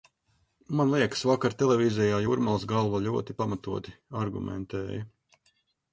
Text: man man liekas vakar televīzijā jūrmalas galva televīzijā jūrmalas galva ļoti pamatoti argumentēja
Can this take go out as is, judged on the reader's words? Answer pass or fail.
fail